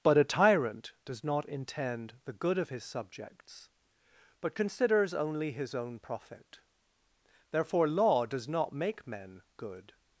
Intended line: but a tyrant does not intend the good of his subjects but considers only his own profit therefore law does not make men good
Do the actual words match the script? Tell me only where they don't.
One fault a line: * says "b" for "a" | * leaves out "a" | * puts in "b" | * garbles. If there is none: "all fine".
all fine